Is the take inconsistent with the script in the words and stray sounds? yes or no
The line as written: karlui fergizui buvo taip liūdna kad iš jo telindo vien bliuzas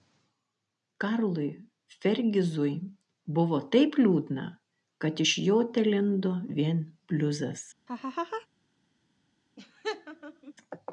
yes